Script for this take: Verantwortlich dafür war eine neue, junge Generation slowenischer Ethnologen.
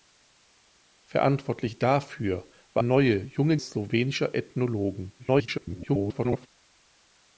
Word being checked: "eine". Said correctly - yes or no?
no